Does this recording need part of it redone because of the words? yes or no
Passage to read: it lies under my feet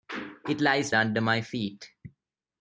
no